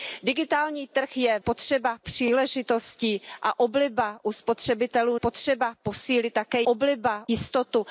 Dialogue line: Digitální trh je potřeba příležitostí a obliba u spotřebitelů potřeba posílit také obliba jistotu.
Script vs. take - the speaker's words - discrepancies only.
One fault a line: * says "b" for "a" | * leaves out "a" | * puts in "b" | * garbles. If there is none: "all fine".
all fine